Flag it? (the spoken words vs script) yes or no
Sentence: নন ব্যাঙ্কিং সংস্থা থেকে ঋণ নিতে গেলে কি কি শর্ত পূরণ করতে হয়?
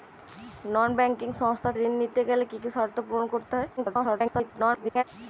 yes